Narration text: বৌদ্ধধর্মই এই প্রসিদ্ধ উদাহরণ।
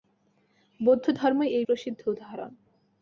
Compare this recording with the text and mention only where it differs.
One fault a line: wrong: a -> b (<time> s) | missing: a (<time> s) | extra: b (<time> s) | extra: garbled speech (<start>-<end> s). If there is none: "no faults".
no faults